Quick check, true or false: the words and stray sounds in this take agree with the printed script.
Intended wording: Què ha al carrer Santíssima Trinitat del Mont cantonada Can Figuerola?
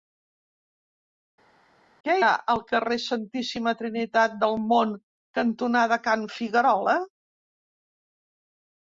true